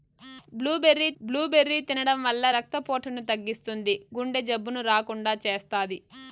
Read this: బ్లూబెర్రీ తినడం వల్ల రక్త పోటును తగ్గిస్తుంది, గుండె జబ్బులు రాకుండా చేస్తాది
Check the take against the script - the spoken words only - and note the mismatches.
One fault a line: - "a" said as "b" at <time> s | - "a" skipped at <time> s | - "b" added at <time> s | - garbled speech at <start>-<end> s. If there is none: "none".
- "బ్లూబెర్రీ" added at 1.2 s